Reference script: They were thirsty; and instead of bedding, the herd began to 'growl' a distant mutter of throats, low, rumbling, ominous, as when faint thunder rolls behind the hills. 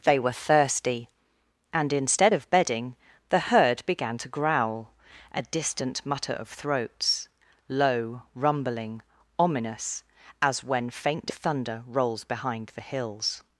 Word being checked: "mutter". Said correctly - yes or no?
yes